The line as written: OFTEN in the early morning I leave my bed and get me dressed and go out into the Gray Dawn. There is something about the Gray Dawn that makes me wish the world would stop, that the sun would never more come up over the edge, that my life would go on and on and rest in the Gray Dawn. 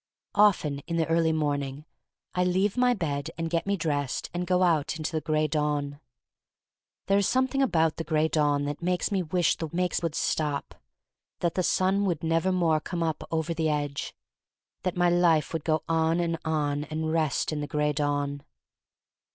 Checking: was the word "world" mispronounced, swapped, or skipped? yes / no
yes